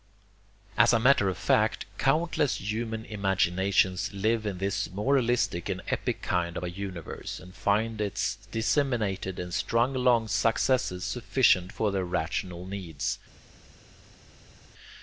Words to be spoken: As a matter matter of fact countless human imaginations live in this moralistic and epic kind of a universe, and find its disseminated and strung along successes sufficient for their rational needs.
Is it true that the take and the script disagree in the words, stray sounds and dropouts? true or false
true